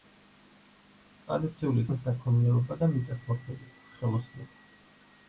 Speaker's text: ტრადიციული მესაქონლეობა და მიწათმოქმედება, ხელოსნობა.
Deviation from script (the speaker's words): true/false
false